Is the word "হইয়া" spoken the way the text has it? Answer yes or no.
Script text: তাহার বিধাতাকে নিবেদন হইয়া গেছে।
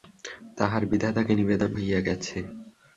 yes